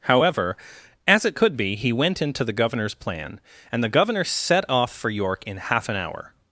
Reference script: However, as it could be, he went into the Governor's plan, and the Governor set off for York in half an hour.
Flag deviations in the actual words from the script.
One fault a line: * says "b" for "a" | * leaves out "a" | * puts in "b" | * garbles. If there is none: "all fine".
all fine